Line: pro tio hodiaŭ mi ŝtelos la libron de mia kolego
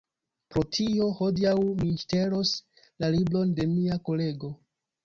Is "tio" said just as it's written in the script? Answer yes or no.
yes